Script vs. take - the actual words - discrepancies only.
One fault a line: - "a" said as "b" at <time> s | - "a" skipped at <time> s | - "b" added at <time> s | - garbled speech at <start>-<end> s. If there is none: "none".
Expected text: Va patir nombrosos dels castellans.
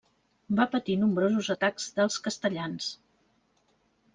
- "atacs" added at 1.5 s